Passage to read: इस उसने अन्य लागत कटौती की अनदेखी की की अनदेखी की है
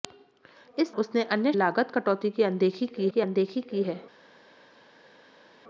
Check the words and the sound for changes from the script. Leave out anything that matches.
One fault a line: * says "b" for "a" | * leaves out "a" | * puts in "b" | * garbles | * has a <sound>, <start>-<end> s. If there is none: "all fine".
all fine